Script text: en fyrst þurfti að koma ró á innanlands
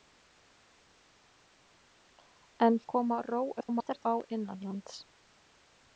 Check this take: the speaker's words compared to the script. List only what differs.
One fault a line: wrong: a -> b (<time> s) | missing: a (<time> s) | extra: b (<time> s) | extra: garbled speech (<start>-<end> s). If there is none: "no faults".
missing: fyrst þurfti (2.8 s)
extra: garbled speech (3.6-4.0 s)